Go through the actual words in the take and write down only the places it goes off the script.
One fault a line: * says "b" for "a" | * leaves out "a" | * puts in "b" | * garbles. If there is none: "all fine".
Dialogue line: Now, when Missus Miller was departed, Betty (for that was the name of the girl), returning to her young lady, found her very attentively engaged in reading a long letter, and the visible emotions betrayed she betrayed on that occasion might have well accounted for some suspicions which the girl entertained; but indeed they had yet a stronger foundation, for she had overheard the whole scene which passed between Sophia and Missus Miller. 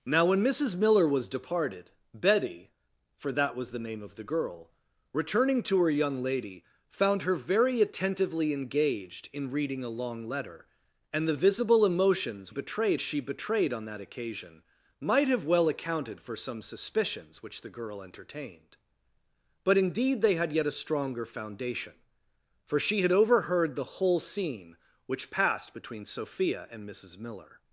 all fine